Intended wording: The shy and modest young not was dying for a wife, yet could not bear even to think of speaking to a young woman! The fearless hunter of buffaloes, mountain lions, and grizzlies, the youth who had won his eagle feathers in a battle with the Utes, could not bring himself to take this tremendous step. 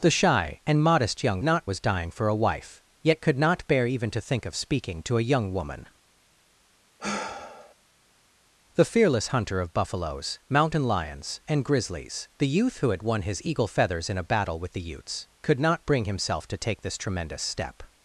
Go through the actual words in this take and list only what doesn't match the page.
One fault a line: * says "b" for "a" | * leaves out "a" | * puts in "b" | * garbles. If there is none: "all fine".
all fine